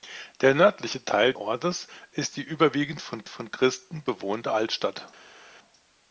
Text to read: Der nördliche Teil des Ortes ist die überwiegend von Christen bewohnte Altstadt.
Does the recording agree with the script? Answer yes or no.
no